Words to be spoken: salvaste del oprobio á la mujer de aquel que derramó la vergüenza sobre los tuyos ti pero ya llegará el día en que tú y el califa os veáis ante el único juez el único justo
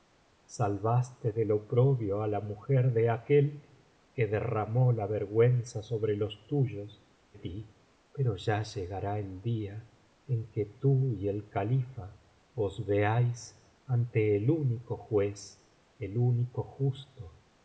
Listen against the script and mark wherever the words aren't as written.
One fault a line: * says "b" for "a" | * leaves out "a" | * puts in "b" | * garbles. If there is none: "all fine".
all fine